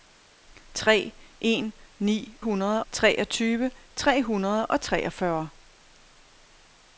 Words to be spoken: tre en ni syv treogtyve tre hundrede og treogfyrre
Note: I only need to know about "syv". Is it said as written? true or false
false